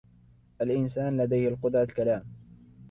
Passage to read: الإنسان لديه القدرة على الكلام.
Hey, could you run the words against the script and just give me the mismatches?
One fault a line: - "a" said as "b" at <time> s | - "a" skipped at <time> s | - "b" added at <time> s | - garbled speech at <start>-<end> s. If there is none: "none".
- "على" skipped at 1.9 s